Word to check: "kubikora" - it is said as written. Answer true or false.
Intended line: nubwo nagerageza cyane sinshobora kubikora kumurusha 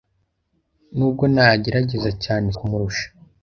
false